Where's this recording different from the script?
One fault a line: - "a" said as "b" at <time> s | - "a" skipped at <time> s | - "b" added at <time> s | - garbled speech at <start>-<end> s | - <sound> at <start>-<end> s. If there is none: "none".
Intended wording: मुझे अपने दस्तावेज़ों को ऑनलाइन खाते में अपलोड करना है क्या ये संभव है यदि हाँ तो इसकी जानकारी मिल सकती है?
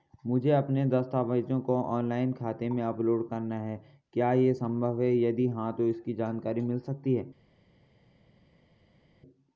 none